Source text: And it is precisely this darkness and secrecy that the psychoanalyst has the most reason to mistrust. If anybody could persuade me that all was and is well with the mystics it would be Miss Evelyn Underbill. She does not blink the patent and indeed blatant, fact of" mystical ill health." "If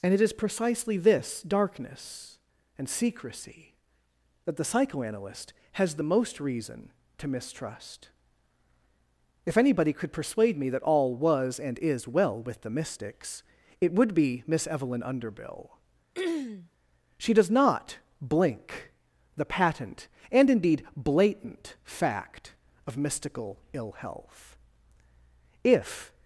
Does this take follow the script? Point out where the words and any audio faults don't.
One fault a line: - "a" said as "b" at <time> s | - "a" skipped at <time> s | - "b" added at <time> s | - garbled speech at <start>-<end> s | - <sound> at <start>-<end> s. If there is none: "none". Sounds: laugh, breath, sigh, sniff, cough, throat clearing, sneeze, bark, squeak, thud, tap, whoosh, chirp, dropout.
- throat clearing at 16.1-16.7 s